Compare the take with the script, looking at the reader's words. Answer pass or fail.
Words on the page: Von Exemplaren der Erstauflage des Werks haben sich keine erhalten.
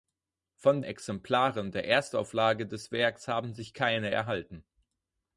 pass